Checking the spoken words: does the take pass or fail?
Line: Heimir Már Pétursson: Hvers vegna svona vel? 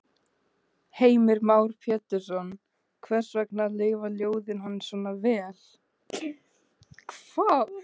fail